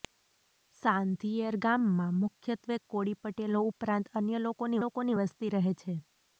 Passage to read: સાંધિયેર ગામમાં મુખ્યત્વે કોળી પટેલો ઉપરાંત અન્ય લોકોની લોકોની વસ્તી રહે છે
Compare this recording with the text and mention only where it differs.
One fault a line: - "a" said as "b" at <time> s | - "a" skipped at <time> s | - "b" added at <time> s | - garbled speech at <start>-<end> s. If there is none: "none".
none